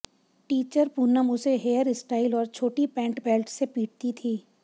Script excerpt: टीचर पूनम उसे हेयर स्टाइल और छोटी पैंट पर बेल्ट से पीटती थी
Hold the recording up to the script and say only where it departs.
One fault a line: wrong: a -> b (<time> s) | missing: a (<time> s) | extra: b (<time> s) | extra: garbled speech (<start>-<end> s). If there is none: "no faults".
missing: पर (3.2 s)